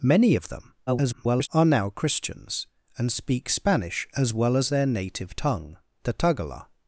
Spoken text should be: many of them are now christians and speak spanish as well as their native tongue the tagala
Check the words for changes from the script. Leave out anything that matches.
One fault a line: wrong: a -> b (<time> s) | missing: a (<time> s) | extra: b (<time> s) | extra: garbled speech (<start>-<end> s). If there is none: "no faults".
extra: garbled speech (0.9-1.5 s)